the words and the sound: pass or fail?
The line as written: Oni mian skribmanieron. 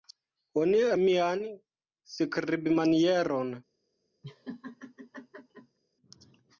fail